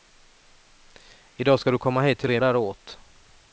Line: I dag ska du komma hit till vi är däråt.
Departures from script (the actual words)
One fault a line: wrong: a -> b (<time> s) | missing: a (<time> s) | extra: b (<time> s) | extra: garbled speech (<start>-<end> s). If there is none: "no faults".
no faults